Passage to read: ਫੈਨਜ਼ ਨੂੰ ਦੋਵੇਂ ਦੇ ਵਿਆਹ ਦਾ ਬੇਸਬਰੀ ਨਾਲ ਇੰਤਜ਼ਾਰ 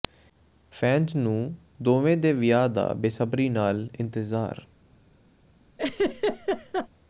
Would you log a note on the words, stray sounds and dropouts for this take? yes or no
yes